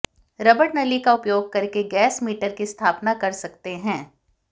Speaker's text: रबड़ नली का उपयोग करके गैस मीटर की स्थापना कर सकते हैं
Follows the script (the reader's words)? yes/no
yes